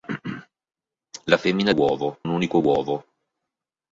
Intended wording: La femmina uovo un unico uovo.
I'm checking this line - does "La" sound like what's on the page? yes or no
yes